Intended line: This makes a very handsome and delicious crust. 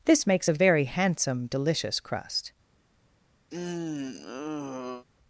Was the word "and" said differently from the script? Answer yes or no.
yes